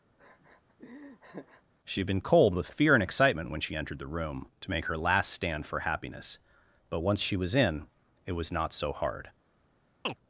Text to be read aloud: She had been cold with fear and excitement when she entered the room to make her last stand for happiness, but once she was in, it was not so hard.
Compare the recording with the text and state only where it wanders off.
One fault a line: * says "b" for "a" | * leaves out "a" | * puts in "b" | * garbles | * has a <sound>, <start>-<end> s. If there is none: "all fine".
* has a laugh, 0.2-1.6 s
* has a chirp, 10.1-10.2 s